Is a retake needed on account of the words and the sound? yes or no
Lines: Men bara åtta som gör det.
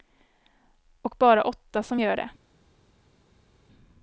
yes